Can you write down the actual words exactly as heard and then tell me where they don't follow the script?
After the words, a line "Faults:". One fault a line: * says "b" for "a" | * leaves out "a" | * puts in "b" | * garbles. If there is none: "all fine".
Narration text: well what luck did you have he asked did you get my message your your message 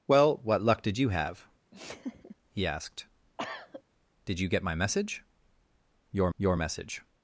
well what luck did you have he asked did you get my message your your message
Faults:
all fine